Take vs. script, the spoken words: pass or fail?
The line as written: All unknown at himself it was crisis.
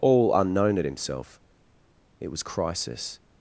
pass